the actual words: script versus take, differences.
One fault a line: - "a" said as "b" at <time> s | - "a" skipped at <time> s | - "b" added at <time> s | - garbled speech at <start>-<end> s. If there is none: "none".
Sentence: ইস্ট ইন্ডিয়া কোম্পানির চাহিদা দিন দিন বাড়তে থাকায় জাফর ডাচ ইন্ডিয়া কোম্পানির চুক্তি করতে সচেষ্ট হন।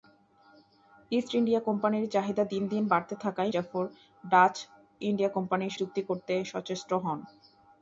none